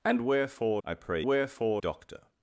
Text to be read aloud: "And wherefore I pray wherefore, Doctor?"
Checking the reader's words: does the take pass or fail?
pass